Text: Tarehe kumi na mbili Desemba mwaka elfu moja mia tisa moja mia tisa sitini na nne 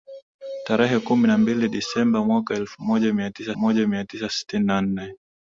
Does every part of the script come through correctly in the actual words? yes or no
yes